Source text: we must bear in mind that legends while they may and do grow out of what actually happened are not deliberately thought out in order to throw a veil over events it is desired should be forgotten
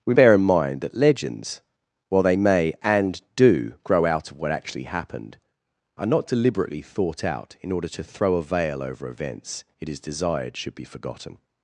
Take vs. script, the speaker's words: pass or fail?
fail